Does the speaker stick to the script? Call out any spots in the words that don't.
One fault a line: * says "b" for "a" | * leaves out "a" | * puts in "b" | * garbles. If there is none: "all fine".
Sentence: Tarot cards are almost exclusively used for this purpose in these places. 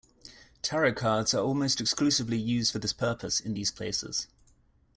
all fine